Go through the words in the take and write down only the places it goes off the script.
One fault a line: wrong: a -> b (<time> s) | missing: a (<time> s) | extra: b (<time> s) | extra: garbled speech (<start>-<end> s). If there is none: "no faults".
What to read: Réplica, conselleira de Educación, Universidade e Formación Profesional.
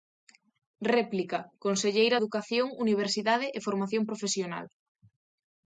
missing: de (2.2 s)